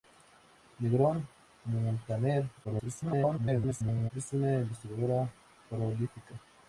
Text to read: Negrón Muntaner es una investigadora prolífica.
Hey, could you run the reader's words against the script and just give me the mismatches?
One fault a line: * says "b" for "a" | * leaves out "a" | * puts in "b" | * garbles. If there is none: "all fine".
* garbles